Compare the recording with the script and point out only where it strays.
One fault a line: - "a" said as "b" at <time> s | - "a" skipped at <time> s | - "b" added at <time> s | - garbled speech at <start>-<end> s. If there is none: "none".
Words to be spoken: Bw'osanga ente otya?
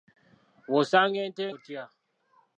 none